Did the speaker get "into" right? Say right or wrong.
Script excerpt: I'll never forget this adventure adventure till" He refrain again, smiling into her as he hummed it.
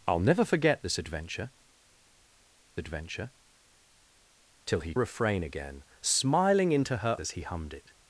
right